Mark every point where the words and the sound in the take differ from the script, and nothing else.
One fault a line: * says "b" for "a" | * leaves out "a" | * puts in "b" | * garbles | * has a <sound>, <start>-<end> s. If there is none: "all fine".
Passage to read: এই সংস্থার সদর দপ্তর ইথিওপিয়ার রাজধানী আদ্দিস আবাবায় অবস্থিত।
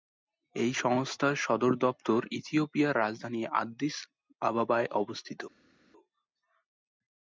all fine